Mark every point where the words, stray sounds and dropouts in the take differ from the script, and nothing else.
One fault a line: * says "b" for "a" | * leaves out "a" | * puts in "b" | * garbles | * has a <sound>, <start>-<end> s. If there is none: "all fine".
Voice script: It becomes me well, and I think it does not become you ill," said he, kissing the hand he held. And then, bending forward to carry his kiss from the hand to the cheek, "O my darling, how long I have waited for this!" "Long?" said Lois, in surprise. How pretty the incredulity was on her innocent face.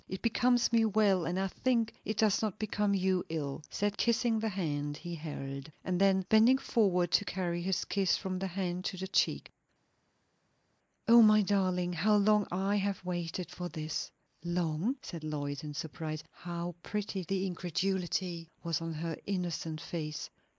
* leaves out "he"